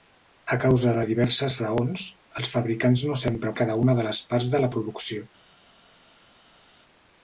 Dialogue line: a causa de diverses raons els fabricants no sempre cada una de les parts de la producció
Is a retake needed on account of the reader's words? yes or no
no